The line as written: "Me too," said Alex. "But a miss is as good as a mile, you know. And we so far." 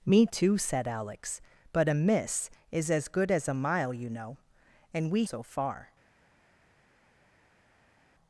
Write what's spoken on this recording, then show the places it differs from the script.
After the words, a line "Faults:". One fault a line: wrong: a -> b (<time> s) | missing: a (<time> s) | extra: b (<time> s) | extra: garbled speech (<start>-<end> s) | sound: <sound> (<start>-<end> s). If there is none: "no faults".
"Me too," said Alex. "But a miss is as good as a mile, you know. And we so far."
Faults:
no faults